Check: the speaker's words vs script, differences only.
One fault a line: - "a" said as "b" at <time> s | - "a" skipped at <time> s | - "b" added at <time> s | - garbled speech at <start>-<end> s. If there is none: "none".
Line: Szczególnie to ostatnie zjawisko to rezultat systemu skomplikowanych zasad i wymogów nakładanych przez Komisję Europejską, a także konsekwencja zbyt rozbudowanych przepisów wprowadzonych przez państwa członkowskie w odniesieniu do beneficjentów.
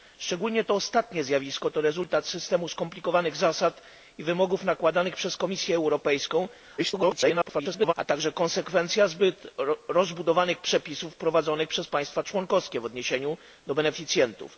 - garbled speech at 6.8-7.9 s